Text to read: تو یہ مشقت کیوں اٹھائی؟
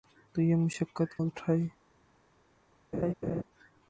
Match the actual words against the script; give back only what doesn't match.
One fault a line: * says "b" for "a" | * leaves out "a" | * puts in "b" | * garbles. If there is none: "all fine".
* leaves out "کیوں"